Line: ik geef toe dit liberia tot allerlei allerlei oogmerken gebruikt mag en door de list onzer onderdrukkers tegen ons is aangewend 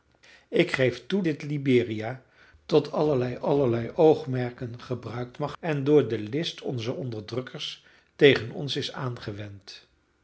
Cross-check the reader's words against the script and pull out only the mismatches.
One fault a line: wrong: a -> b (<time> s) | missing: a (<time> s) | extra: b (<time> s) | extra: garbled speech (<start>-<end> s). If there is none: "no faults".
no faults